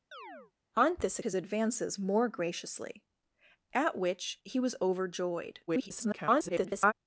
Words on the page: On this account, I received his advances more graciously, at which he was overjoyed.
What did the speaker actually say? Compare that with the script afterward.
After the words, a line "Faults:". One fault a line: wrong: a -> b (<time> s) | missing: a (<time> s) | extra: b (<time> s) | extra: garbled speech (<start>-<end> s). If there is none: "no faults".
On this his advances more graciously, at which he was overjoyed. [garbled]
Faults:
missing: account I received (1.2 s)
extra: garbled speech (5.7-6.9 s)